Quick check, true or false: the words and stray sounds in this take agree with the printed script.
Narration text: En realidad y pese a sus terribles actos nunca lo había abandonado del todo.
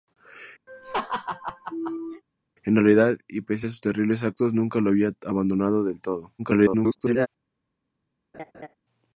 false